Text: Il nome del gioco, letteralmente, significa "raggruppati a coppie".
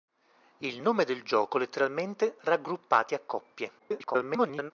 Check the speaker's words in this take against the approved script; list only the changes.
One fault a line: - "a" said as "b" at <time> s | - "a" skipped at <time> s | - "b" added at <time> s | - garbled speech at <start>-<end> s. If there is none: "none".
- "significa" skipped at 2.4 s
- garbled speech at 3.8-4.7 s